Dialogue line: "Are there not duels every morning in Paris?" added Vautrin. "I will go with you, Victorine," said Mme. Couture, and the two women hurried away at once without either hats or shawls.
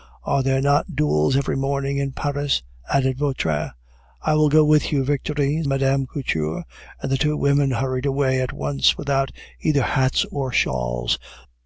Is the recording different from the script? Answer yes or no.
yes